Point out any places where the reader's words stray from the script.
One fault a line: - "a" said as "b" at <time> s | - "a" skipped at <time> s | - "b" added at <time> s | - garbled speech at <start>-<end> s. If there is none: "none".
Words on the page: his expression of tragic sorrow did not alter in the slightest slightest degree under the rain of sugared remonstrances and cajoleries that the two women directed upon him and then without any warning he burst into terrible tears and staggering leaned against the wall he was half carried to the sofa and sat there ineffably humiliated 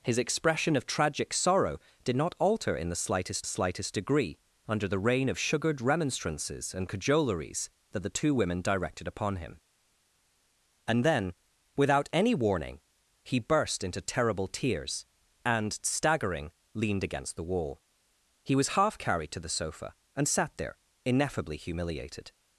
none